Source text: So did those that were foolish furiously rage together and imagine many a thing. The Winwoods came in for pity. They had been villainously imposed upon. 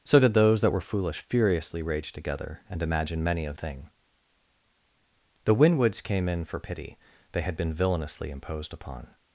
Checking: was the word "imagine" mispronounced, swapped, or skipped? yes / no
no